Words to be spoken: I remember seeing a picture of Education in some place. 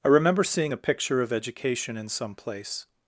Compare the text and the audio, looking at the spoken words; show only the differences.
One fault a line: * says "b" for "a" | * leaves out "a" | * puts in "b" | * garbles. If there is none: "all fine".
all fine